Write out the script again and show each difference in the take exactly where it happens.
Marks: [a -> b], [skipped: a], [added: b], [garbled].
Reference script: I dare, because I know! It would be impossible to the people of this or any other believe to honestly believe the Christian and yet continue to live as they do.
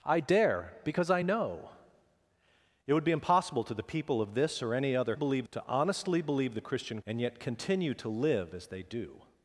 I dare, because I know! It would be impossible to the people of this or any other believe to honestly believe the Christian and yet continue to live as they do.